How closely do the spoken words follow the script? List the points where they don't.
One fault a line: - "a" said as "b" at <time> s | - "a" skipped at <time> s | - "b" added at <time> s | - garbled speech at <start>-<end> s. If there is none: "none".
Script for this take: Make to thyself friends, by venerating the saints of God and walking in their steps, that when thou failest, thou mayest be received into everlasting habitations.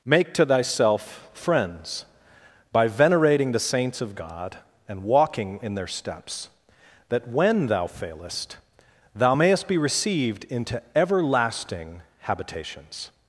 none